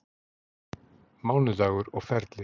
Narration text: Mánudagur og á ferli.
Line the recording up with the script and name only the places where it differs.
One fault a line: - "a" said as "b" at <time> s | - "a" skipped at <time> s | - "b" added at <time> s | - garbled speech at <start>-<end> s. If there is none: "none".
none